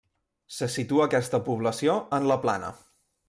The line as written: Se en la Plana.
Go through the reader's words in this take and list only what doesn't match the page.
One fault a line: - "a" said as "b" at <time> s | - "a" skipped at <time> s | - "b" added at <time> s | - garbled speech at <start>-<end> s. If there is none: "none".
- "situa aquesta població" added at 0.8 s